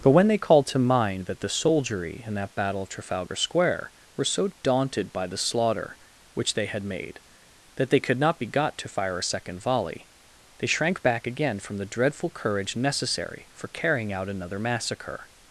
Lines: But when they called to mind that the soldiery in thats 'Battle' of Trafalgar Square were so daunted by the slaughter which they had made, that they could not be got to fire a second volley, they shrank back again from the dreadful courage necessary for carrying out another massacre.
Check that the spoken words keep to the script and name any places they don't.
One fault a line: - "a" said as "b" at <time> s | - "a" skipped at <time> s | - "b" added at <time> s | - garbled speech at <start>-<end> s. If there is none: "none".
- "thats" said as "that" at 2.3 s